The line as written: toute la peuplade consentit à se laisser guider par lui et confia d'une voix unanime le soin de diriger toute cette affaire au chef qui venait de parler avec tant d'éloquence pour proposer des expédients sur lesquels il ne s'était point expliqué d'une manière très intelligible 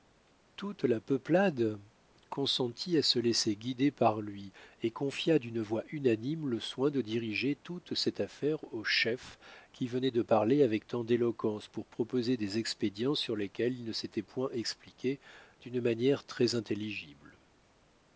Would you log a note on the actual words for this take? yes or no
no